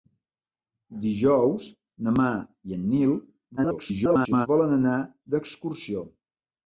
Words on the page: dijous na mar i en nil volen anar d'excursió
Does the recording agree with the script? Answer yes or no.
no